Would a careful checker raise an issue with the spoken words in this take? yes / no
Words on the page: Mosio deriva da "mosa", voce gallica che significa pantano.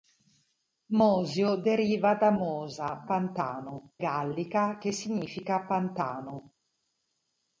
yes